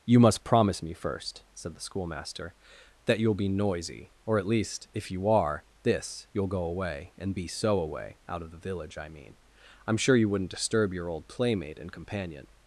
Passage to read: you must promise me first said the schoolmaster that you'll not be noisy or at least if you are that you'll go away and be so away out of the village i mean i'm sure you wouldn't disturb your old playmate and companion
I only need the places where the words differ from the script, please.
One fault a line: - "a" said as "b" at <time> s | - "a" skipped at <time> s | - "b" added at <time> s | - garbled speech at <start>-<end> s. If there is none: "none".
- "not" skipped at 3.3 s
- "that" said as "this" at 5.8 s